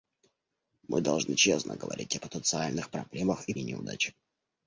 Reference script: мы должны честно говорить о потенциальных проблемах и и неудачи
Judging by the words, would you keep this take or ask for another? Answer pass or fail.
pass